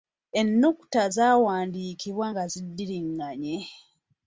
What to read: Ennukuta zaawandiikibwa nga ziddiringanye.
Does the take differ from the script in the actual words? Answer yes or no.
no